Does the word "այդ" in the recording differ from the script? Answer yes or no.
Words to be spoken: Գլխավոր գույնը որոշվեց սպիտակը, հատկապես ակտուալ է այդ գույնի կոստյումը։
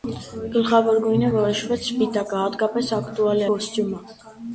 yes